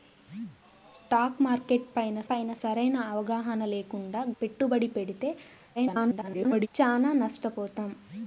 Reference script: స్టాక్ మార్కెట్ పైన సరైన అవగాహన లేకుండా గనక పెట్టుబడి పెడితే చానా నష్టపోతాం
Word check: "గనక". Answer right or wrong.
wrong